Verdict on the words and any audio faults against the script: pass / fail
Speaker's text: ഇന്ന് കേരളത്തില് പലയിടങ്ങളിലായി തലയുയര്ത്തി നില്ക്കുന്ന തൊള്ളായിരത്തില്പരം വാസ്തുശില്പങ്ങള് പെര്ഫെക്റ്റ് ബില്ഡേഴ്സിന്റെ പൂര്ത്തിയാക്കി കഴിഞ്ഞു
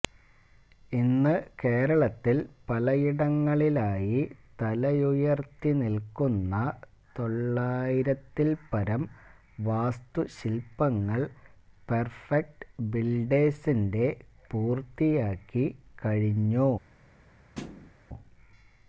fail